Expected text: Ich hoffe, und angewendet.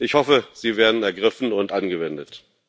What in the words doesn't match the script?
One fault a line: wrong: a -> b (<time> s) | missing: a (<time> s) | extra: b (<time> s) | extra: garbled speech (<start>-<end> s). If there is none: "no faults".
extra: sie werden ergriffen (0.5 s)